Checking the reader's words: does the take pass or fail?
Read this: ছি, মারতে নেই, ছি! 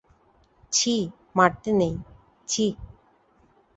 pass